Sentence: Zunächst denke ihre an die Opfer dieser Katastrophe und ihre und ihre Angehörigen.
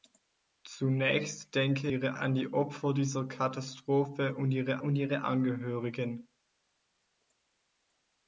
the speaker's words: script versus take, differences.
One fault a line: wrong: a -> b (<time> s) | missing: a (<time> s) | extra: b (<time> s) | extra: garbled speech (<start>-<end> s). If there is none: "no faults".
no faults